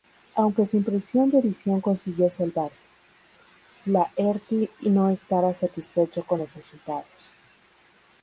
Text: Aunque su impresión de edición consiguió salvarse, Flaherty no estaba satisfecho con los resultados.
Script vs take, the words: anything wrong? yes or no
no